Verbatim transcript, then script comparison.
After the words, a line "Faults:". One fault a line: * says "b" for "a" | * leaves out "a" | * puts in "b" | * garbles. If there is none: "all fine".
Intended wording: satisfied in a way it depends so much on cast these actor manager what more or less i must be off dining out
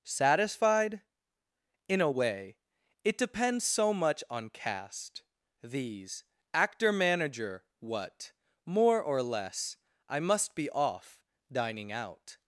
satisfied in a way it depends so much on cast these actor manager what more or less i must be off dining out
Faults:
all fine